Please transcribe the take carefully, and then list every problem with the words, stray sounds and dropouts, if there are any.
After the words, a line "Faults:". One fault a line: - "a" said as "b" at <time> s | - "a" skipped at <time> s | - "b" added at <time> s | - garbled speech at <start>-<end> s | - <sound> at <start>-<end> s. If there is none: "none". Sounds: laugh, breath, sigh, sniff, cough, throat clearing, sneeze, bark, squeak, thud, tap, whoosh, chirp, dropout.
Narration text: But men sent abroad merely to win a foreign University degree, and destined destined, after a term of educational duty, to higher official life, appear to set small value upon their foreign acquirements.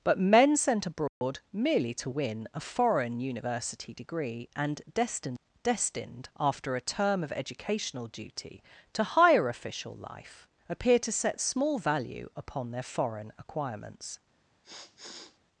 But men sent abroad merely to win a foreign University degree, and destined destined, after a term of educational duty, to higher official life, appear to set small value upon their foreign acquirements.
Faults:
- dropout at 1.1-1.2 s
- sniff at 14.6-15.4 s